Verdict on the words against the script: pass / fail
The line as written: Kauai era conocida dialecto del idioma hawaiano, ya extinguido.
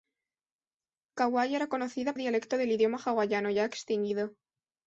pass